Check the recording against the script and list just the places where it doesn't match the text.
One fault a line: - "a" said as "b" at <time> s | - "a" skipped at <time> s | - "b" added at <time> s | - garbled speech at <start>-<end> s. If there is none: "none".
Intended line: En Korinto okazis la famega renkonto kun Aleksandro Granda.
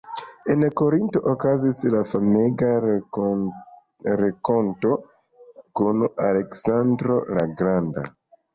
- "la" added at 7.4 s